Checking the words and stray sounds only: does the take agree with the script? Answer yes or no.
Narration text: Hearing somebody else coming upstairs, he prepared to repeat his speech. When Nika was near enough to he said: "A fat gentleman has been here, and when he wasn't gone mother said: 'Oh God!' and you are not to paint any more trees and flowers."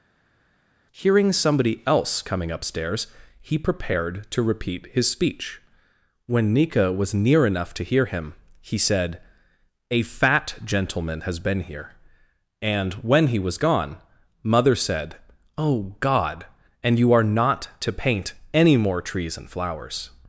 no